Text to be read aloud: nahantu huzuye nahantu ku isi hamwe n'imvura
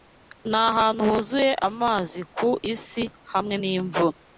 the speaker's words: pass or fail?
fail